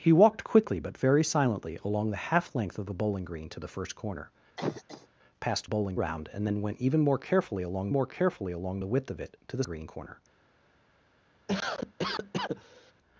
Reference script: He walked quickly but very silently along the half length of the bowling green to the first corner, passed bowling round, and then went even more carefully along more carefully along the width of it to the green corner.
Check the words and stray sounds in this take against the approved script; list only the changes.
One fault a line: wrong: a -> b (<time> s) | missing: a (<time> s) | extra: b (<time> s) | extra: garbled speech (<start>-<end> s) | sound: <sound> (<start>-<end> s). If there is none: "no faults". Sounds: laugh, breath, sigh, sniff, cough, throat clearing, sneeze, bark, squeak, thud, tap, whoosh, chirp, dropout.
sound: cough (4.6-5.1 s)
sound: cough (11.5-12.9 s)